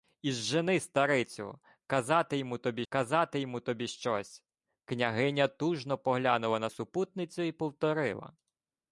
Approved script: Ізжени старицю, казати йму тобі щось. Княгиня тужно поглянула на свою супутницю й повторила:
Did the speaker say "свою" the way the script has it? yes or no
no